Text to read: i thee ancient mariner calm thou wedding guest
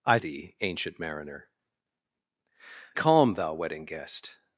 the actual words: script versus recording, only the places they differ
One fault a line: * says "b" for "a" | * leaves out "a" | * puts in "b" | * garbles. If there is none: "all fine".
all fine